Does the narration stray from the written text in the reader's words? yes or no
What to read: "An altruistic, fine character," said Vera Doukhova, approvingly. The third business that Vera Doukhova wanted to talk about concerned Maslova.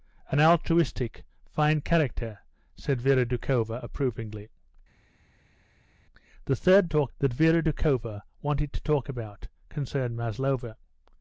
yes